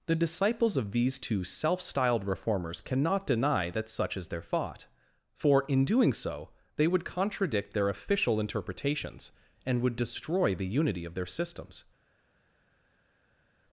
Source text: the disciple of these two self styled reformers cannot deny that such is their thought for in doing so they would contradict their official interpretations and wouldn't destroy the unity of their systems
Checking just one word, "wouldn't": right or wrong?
wrong